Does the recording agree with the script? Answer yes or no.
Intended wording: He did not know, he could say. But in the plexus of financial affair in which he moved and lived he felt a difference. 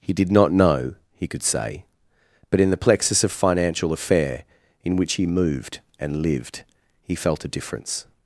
yes